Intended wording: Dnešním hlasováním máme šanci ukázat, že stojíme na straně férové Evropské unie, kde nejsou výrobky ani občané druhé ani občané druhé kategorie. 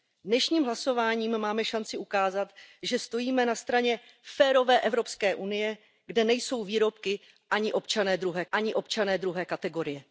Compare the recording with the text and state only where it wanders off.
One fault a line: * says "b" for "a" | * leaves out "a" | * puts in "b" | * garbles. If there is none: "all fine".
all fine